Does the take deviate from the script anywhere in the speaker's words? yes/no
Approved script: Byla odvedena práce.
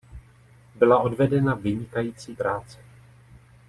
yes